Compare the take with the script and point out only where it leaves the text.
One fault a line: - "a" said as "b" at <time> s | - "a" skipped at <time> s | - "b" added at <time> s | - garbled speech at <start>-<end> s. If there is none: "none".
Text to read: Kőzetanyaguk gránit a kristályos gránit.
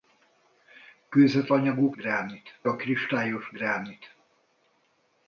none